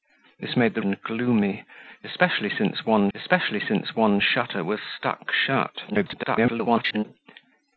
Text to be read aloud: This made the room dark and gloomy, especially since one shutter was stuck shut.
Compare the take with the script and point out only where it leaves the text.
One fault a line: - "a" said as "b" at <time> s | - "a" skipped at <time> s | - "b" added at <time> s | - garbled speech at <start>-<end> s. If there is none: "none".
- "room dark and gloomy" said as "and gloomy especially since one" at 0.8 s
- garbled speech at 5.9-7.0 s